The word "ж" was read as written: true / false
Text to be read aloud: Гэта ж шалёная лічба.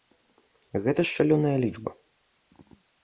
true